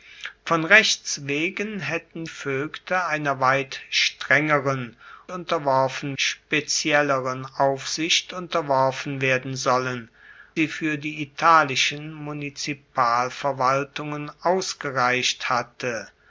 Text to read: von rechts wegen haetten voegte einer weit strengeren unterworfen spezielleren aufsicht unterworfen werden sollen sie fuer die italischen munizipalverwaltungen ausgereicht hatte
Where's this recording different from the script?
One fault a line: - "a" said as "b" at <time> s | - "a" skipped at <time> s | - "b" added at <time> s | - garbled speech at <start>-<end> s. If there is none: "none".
none